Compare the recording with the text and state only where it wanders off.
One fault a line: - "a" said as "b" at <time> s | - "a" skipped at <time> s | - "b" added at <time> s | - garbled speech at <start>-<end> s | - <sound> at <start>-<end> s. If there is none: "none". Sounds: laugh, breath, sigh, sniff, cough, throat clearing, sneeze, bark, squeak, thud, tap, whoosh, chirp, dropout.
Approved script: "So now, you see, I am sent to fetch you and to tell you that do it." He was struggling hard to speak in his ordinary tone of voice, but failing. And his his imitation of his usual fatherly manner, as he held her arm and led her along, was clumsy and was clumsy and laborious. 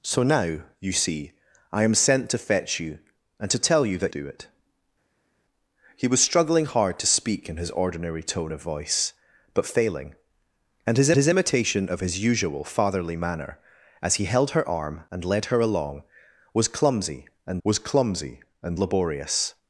none